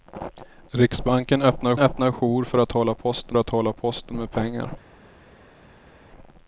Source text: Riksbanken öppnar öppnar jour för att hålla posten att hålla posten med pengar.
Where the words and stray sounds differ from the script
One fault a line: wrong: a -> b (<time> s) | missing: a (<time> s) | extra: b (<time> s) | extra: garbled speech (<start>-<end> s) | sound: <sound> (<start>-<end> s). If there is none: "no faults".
no faults